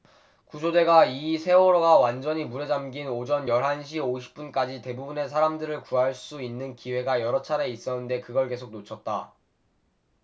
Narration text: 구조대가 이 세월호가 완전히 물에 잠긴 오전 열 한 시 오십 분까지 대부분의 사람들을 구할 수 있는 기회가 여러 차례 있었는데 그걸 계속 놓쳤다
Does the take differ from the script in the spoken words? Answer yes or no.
no